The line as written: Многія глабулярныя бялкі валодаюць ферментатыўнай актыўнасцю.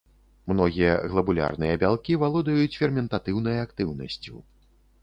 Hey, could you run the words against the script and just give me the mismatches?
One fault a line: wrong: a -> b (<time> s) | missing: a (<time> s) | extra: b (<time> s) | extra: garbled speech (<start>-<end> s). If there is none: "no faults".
no faults